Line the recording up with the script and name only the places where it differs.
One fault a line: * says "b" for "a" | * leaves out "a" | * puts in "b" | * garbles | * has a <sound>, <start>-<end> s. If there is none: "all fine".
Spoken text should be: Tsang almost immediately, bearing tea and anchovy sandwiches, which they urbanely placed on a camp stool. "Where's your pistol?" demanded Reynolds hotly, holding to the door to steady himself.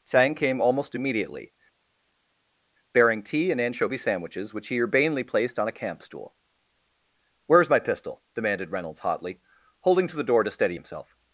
* puts in "came"
* says "he" for "they"
* says "my" for "your"